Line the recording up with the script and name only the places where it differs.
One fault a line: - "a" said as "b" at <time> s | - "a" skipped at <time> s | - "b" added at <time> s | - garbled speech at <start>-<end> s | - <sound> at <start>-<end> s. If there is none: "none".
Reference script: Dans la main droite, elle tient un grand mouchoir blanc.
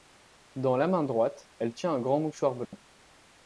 - dropout at 2.6-2.7 s